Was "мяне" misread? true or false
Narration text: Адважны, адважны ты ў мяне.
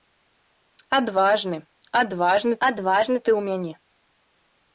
false